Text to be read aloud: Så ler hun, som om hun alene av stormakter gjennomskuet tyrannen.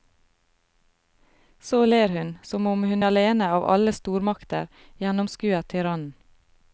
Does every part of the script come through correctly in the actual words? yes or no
no